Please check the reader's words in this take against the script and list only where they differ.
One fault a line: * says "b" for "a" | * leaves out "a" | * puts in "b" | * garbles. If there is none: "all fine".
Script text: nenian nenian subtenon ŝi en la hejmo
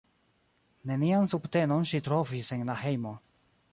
* leaves out "nenian"
* puts in "trovis"